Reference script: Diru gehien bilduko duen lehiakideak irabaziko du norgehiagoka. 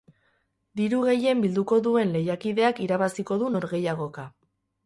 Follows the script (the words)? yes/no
yes